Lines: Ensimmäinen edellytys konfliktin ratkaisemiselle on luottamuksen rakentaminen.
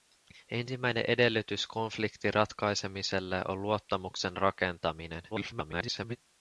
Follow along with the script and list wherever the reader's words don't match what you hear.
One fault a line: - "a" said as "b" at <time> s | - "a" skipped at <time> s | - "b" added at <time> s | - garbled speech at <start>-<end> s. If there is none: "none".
- garbled speech at 5.3-6.2 s